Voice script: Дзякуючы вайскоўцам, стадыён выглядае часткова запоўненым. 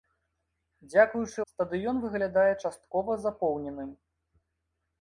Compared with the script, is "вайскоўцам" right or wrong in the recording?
wrong